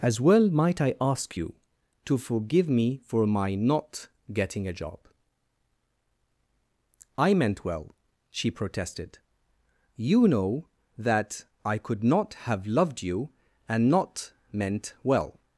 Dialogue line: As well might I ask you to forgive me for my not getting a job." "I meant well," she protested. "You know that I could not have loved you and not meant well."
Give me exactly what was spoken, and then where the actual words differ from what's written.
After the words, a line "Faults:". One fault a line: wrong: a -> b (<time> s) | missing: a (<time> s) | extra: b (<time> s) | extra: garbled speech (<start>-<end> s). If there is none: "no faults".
As well might I ask you to forgive me for my not getting a job." "I meant well," she protested. "You know that I could not have loved you and not meant well."
Faults:
no faults